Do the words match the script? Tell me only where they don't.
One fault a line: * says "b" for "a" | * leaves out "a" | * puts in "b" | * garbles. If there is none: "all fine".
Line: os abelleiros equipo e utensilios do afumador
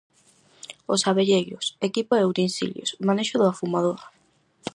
* puts in "manexo"